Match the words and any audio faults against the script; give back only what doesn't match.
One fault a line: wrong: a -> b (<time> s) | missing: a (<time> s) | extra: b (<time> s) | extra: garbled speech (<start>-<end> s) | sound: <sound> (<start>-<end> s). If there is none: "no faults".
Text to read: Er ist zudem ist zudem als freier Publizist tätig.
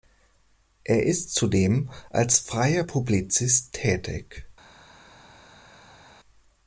missing: ist zudem (1.9 s)